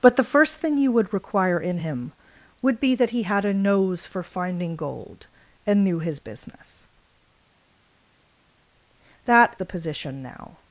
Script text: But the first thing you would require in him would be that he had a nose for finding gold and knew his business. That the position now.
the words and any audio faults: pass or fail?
pass